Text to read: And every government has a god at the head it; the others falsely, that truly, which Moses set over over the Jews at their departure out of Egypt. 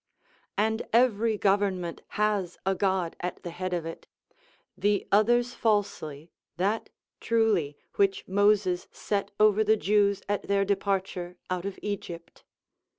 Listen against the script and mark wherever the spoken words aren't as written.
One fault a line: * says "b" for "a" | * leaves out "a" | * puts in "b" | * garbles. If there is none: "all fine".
* puts in "of"
* leaves out "over"